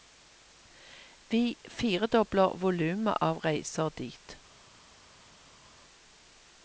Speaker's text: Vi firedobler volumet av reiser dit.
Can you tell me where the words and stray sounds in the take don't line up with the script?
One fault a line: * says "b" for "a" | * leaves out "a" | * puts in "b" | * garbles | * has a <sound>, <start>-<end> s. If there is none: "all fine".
all fine